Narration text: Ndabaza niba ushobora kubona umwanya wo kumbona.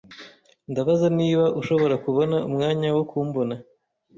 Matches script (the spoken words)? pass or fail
pass